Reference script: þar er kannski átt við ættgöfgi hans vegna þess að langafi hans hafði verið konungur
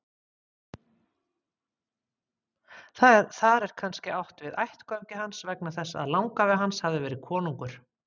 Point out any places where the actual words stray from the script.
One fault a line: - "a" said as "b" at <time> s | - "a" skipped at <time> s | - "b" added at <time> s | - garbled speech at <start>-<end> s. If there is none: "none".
none